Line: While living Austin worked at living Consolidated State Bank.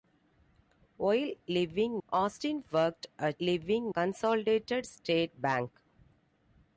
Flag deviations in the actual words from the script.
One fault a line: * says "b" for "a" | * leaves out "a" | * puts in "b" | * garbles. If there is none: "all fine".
all fine